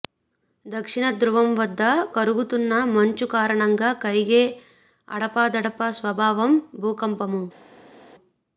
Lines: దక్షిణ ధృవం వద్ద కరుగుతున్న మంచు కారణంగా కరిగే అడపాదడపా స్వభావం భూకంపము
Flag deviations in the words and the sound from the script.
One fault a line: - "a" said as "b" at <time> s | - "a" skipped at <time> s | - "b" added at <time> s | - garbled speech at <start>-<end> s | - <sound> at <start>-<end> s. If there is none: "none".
none